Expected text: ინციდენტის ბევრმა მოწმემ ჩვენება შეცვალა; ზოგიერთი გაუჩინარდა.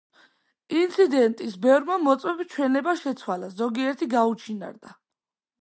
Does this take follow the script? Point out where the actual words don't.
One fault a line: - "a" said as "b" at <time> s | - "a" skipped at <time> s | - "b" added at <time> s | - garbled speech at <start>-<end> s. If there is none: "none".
none